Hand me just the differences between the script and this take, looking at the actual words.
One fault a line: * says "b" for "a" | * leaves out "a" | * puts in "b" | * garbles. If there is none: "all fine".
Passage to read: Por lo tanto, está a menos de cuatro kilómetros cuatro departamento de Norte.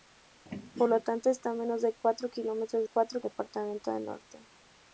all fine